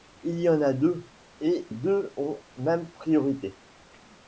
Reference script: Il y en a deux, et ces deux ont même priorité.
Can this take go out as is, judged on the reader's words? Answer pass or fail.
fail